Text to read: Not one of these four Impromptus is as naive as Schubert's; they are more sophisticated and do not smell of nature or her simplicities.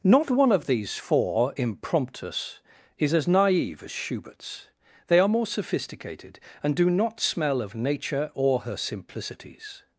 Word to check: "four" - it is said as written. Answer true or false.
true